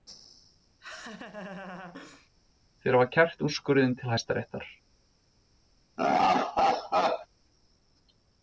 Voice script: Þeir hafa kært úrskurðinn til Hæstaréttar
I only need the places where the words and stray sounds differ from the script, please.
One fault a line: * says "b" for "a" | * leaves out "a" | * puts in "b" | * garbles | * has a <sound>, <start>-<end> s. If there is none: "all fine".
* has a laugh, 0.8-2.3 s
* has a laugh, 6.0-7.3 s